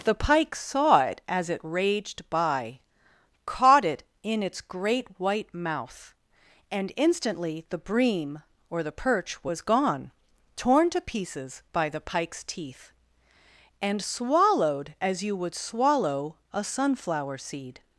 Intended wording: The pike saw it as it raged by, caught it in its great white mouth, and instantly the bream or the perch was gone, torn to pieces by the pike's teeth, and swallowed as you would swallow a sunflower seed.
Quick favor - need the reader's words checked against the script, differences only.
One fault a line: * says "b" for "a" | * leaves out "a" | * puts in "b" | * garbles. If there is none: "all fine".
all fine